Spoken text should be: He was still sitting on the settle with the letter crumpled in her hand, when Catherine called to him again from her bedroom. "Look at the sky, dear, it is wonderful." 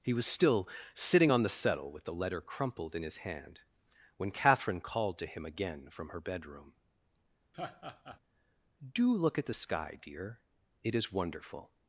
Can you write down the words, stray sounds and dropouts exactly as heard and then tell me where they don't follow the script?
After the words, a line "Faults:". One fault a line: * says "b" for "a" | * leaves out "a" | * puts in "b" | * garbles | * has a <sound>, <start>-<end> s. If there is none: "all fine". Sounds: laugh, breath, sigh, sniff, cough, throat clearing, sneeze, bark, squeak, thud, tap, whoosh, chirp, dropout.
He was still sitting on the settle with the letter crumpled in his hand, when Catherine called to him again from her bedroom. "Do look at the sky, dear, it is wonderful."
Faults:
* says "his" for "her"
* has a laugh, 7.5-8.2 s
* puts in "Do"